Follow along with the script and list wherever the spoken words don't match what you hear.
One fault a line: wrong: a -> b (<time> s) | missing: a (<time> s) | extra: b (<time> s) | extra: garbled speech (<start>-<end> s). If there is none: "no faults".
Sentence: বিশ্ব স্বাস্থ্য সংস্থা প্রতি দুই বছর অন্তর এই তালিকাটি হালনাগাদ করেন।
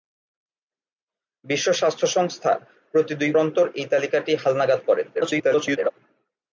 missing: বছর (3.3 s)
extra: garbled speech (5.1-5.9 s)